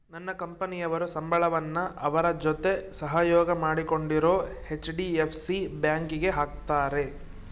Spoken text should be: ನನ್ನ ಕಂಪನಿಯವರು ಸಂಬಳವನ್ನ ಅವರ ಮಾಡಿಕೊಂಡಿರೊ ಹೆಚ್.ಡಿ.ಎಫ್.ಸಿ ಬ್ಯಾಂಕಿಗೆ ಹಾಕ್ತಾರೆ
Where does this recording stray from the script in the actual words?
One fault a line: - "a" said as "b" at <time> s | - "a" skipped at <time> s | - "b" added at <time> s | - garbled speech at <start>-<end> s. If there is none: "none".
- "ಜೊತೆ ಸಹಯೋಗ" added at 2.4 s